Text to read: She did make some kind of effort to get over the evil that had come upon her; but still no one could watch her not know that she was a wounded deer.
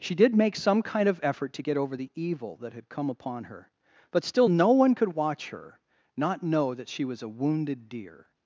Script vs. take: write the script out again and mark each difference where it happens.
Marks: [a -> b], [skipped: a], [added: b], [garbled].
She did make some kind of effort to get over the evil that had come upon her; but still no one could watch her not know that she was a wounded deer.